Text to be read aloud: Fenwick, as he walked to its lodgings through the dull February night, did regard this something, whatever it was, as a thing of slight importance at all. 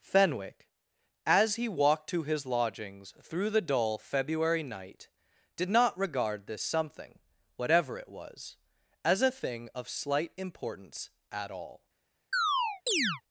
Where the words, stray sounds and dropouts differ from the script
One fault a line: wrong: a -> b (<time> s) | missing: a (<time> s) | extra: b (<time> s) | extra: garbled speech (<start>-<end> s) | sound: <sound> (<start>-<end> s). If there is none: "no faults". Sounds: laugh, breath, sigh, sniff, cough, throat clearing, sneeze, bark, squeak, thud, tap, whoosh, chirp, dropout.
wrong: its -> his (2.2 s)
extra: not (5.7 s)
sound: chirp (12.3-13.2 s)